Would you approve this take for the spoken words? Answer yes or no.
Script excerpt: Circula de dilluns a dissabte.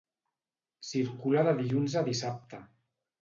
yes